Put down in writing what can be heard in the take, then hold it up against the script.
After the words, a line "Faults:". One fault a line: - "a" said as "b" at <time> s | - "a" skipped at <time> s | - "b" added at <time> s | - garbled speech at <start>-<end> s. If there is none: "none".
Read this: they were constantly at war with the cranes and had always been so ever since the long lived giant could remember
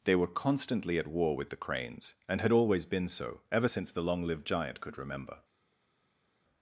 they were constantly at war with the cranes and had always been so ever since the long lived giant could remember
Faults:
none